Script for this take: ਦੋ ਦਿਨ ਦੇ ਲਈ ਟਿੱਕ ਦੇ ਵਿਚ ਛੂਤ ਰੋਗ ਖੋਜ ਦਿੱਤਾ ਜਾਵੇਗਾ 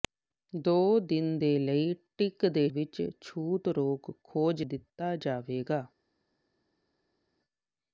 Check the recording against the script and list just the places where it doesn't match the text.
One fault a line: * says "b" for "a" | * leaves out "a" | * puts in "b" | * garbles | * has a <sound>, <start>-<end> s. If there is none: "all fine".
all fine